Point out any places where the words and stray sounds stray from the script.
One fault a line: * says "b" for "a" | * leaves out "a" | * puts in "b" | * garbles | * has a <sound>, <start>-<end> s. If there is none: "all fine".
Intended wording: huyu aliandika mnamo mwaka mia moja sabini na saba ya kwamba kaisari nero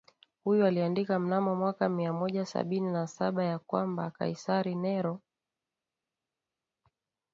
all fine